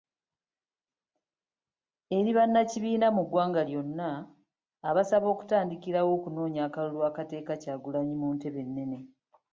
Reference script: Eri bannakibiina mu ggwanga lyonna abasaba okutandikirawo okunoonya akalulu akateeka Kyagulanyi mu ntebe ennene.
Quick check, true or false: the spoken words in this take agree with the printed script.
true